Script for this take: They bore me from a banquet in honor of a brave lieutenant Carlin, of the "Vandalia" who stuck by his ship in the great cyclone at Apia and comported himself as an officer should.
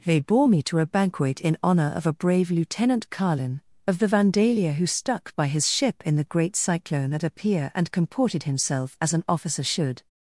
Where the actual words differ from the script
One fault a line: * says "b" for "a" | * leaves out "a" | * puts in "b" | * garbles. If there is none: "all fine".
* says "to" for "from"